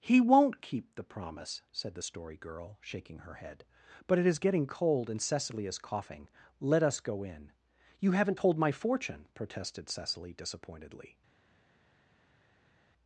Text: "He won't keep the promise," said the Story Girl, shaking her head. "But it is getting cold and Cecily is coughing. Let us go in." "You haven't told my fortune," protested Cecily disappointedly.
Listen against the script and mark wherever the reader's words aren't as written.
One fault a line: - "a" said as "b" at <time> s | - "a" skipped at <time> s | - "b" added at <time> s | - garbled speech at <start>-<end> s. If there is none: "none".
none